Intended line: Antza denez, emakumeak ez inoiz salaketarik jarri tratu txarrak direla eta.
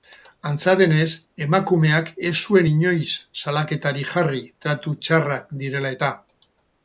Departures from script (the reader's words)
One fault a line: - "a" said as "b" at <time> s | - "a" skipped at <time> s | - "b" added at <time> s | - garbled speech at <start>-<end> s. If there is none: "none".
- "zuen" added at 2.5 s